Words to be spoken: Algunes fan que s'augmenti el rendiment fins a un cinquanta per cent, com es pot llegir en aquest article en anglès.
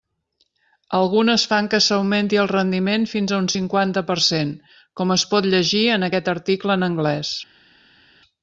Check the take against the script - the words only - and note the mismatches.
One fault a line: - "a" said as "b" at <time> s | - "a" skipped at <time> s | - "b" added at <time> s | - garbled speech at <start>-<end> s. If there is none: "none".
none